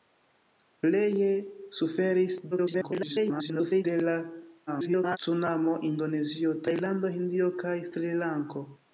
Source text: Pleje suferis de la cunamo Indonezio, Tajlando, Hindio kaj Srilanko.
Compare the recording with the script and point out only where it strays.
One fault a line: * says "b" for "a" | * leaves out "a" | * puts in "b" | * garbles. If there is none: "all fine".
* garbles
* garbles